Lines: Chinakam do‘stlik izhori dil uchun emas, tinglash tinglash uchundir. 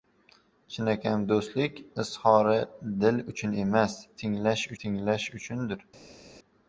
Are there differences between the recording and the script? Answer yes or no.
no